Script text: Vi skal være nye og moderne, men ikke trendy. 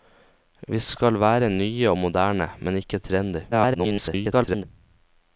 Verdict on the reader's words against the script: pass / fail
fail